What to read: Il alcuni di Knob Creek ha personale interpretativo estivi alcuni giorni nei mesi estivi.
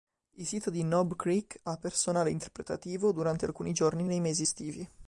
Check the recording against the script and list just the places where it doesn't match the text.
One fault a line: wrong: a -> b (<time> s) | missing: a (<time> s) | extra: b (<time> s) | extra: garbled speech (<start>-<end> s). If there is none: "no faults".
wrong: alcuni -> sito (0.5 s)
wrong: estivi -> durante (3.1 s)